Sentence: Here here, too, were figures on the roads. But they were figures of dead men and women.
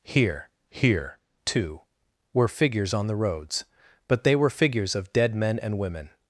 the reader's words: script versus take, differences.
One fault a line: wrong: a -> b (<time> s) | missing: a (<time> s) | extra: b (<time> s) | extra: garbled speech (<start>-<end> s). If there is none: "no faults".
no faults